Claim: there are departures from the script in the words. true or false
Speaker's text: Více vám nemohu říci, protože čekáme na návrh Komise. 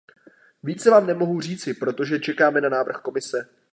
false